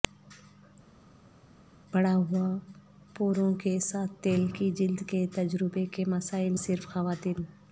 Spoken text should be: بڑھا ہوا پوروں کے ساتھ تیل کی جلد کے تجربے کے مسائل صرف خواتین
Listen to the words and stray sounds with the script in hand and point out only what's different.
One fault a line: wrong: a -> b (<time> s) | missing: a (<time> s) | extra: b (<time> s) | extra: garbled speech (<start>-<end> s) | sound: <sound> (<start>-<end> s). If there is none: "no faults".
no faults